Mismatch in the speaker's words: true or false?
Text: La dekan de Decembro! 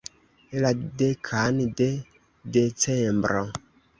false